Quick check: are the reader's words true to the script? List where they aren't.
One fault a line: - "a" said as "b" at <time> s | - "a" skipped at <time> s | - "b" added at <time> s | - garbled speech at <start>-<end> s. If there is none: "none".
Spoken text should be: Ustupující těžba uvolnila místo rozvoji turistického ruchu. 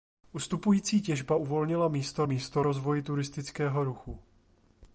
- "místo" added at 2.2 s